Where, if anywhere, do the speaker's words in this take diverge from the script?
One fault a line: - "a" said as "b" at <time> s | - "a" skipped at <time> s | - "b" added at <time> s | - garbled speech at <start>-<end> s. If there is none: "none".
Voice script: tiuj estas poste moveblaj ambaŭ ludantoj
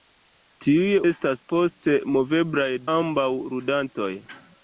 none